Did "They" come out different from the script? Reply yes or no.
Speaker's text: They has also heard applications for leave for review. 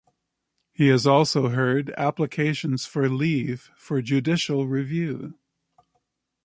yes